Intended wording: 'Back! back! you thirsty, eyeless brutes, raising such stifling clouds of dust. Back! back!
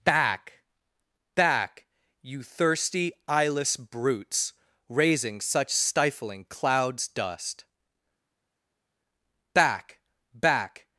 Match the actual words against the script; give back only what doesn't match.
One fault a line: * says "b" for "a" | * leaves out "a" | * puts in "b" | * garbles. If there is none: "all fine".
* leaves out "of"